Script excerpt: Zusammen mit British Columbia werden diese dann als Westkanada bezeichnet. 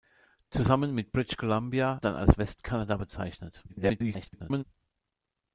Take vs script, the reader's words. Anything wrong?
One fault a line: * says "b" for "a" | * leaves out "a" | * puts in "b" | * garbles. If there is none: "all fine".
* leaves out "werden diese"
* garbles